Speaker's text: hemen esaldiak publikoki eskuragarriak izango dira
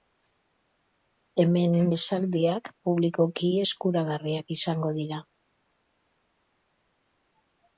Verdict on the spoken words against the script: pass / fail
pass